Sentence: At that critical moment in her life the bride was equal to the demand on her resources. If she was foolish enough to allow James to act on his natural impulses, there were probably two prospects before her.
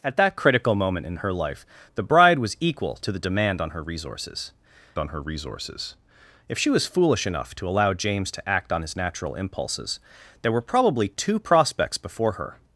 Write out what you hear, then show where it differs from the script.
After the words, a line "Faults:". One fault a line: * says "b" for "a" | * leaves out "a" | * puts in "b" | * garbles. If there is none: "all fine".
At that critical moment in her life the bride was equal to the demand on her resources on her resources. If she was foolish enough to allow James to act on his natural impulses, there were probably two prospects before her.
Faults:
* puts in "on her resources"